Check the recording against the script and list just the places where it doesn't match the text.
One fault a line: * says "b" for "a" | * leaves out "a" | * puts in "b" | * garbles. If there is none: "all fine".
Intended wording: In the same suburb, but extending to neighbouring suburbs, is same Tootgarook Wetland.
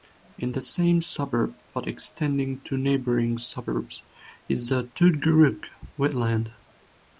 * says "the" for "same"